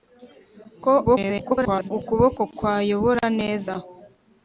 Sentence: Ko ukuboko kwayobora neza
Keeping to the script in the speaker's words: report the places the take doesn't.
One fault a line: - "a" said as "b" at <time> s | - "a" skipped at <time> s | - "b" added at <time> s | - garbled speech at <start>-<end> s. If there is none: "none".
- garbled speech at 1.1-1.9 s